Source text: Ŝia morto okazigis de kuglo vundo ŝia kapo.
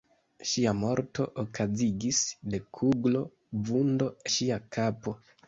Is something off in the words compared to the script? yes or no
no